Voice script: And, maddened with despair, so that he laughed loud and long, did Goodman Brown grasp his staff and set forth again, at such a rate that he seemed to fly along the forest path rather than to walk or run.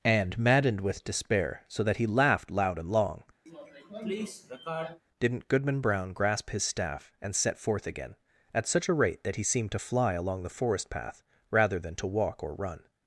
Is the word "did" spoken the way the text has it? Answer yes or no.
no